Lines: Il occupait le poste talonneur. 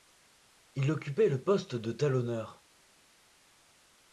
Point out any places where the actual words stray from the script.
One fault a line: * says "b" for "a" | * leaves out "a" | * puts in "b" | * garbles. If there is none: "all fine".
* puts in "de"